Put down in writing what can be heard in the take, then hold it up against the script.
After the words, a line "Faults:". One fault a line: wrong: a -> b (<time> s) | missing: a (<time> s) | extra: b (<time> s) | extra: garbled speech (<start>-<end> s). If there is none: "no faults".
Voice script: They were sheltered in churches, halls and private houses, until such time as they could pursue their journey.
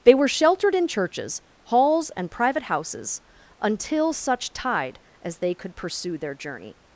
They were sheltered in churches, halls and private houses, until such tide as they could pursue their journey.
Faults:
wrong: time -> tide (4.5 s)